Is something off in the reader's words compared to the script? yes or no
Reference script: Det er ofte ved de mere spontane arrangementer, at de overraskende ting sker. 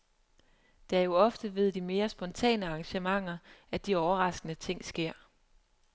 yes